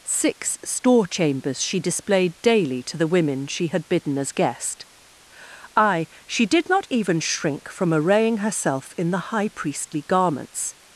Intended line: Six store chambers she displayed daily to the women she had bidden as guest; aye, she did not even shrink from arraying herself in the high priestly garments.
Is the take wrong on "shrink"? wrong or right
right